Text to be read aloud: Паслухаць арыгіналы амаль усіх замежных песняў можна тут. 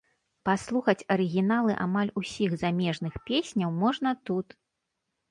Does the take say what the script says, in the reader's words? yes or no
yes